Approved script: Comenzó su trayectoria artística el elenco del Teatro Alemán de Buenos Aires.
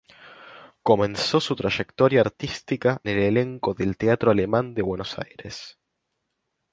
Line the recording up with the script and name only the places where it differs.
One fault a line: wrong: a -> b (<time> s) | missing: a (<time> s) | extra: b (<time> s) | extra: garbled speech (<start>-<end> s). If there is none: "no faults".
no faults